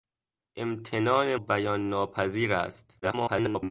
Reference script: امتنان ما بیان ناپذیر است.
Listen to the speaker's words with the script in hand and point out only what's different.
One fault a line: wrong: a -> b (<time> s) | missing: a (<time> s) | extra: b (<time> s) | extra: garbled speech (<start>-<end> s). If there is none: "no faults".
missing: ما (1.4 s)
extra: garbled speech (3.0-3.7 s)